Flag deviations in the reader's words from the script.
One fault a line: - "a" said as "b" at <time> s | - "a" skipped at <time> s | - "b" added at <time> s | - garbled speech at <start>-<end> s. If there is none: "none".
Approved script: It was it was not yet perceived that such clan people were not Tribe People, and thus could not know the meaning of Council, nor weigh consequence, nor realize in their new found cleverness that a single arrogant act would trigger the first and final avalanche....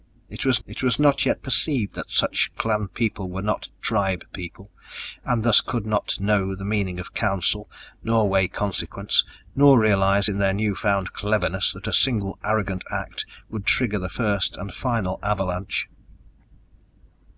none